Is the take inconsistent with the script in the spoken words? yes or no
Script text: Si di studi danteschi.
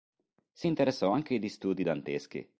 yes